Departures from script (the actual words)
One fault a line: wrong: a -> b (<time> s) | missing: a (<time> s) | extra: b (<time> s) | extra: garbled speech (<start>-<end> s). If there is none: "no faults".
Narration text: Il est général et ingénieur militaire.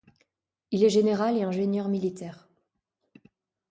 no faults